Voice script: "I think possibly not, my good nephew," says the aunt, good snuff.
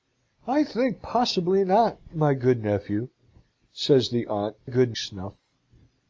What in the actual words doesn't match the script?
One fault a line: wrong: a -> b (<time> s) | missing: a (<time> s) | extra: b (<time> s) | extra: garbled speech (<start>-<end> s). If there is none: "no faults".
no faults